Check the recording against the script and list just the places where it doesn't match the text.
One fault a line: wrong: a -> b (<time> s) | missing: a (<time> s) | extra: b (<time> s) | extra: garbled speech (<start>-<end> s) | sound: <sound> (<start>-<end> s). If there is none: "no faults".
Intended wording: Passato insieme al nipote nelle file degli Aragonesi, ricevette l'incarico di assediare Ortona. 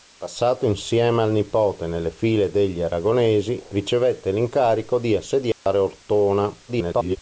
sound: dropout (5.5-5.7 s)
extra: garbled speech (6.7-7.2 s)